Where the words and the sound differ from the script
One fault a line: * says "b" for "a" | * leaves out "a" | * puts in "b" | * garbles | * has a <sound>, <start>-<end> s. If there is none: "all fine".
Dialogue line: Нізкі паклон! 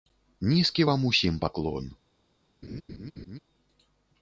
* puts in "вам усім"
* has a laugh, 2.6-3.4 s